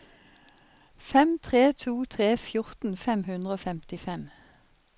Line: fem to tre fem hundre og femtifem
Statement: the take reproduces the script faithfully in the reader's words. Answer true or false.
false